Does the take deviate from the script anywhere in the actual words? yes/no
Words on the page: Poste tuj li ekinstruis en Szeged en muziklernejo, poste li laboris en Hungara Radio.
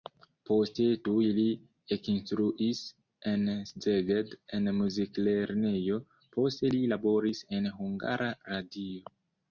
no